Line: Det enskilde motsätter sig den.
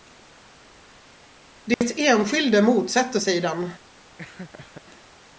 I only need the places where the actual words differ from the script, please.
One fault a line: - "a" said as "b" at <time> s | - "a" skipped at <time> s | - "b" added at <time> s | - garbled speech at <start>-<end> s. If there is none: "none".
none